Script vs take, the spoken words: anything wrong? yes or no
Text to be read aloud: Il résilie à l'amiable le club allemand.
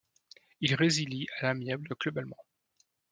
no